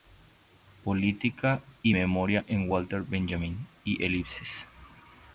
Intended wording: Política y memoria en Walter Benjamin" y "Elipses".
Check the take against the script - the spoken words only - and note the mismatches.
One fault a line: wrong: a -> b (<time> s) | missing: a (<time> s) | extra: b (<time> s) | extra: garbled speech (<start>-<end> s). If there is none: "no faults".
no faults